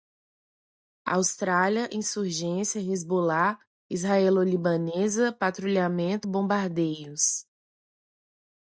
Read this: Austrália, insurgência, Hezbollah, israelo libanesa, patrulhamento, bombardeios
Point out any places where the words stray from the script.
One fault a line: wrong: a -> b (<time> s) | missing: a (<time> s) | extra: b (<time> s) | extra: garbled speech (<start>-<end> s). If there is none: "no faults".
no faults